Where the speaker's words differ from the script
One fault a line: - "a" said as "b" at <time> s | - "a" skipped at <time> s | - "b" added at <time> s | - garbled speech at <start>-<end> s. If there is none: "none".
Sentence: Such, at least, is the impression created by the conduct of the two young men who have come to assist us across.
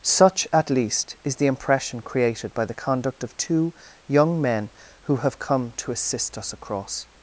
- "the" skipped at 3.4 s